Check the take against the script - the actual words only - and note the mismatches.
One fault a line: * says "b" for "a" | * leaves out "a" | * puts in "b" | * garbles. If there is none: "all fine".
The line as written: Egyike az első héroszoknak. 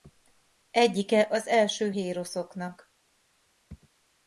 all fine